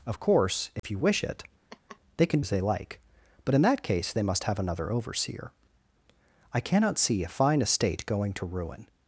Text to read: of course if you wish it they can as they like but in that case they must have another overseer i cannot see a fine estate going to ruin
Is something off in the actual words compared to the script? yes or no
no